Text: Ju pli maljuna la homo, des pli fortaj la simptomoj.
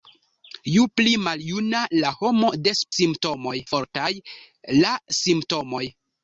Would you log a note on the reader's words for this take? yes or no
yes